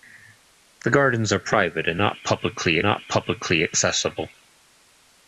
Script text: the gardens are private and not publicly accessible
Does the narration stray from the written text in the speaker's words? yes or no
yes